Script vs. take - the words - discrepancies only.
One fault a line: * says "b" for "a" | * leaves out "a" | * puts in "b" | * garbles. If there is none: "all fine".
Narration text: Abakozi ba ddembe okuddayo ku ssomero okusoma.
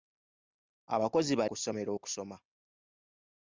* leaves out "ddembe okuddayo"